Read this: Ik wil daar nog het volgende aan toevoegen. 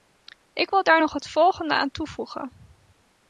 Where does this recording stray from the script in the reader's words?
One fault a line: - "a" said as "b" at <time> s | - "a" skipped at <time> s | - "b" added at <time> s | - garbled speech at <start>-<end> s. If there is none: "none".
none